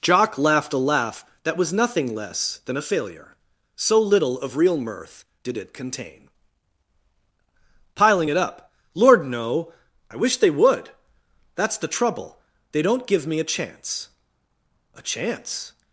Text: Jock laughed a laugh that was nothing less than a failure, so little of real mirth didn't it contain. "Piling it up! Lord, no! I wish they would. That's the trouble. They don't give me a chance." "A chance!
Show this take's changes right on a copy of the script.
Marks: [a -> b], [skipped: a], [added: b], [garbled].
Jock laughed a laugh that was nothing less than a failure, so little of real mirth [didn't -> did] it contain. "Piling it up! Lord, no! I wish they would. That's the trouble. They don't give me a chance." "A chance!